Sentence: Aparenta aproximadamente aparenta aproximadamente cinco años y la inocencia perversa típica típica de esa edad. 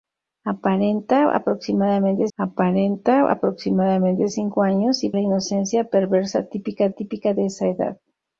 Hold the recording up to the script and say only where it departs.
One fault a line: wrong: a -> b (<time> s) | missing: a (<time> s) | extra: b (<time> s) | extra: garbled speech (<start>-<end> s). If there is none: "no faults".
no faults